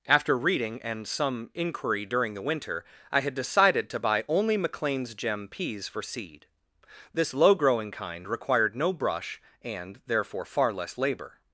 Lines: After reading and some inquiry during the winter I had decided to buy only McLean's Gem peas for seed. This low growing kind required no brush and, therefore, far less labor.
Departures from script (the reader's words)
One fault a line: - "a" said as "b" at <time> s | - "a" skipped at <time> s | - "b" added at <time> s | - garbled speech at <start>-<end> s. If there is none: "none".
none